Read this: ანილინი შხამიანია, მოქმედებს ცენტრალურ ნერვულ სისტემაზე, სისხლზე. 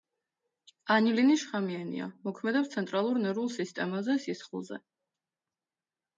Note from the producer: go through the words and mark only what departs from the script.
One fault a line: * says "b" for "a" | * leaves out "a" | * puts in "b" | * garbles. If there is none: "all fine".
all fine